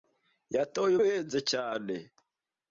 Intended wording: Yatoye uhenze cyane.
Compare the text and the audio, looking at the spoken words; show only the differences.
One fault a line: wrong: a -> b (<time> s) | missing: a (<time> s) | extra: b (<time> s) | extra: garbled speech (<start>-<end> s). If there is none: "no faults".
no faults